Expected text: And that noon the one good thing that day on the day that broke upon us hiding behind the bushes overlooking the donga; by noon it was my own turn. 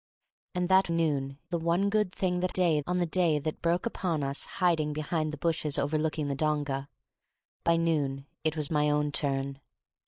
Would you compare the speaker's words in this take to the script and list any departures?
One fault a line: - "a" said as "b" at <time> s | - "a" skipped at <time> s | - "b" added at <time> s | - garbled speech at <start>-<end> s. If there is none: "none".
none